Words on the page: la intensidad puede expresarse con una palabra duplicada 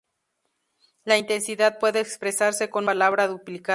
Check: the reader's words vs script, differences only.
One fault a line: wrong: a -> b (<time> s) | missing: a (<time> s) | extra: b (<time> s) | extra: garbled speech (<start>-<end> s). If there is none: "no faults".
missing: una (2.9 s)